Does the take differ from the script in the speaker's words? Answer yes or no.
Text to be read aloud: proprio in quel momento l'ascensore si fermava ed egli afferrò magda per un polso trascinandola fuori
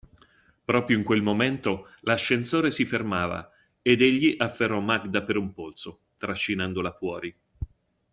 no